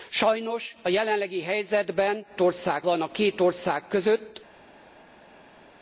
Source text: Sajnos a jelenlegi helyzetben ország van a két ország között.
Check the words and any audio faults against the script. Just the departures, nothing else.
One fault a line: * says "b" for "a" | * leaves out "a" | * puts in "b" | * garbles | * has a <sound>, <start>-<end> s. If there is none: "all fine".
all fine